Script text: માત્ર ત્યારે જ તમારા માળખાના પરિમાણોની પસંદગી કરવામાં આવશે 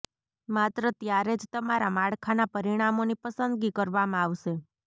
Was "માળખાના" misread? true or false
false